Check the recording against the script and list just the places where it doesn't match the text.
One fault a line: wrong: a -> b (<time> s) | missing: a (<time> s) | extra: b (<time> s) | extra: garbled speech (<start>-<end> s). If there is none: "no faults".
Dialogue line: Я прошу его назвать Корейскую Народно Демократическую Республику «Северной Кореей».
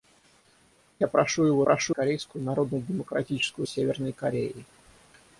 wrong: назвать -> прошу (1.6 s)
missing: Республику (3.7 s)